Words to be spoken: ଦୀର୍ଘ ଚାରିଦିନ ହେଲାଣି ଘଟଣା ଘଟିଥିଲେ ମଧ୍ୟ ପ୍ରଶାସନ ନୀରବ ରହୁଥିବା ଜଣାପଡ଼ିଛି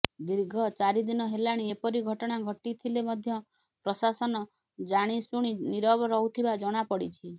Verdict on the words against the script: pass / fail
fail